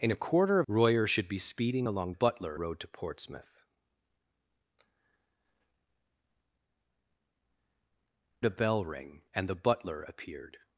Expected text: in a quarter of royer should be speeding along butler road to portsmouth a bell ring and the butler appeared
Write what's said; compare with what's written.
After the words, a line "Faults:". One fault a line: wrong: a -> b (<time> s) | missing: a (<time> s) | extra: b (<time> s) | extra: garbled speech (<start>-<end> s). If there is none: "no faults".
in a quarter of royer should be speeding along butler road to portsmouth a bell ring and the butler appeared
Faults:
no faults